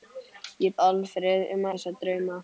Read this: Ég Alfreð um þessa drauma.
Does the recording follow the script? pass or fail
pass